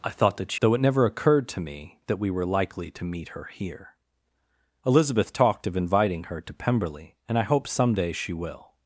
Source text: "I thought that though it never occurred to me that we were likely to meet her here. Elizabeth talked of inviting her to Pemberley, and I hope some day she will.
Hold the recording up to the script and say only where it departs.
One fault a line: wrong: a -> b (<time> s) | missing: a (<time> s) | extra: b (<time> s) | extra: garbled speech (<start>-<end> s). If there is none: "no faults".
no faults